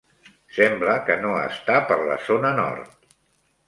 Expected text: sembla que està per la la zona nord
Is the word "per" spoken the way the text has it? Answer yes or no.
yes